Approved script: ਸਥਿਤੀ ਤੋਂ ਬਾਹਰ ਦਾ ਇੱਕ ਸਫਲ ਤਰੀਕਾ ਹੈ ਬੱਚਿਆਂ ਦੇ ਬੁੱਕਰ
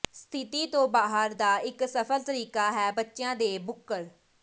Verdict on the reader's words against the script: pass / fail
pass